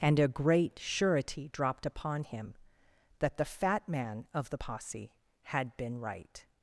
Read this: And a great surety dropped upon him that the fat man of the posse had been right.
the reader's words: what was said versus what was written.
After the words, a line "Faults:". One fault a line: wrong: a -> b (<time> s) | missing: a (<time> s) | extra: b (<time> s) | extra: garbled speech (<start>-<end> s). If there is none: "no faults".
And a great surety dropped upon him that the fat man of the posse had been right.
Faults:
no faults